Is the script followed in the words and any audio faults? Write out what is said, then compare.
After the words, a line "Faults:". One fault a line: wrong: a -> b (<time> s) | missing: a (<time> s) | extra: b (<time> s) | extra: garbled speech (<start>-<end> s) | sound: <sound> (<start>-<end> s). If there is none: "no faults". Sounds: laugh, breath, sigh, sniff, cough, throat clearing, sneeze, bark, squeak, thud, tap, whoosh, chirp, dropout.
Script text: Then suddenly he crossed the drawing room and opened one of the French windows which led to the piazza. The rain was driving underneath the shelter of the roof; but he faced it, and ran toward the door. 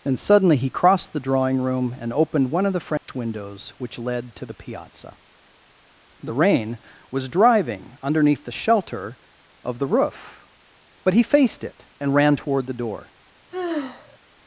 And suddenly he crossed the drawing room and opened one of the French windows which led to the piazza. The rain was driving underneath the shelter of the roof; but he faced it, and ran toward the door.
Faults:
wrong: Then -> And (0.0 s)
sound: dropout (3.0-3.1 s)
sound: sigh (13.5-14.2 s)